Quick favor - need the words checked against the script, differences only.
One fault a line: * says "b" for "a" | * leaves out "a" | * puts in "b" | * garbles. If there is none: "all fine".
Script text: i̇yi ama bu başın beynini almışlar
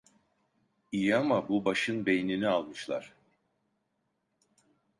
all fine